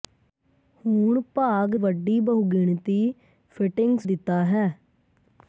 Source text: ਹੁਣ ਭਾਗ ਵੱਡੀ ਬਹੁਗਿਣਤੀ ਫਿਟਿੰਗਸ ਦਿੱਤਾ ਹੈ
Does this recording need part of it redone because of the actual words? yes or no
no